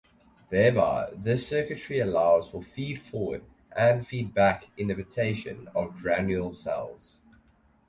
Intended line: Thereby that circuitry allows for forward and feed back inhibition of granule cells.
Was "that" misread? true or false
true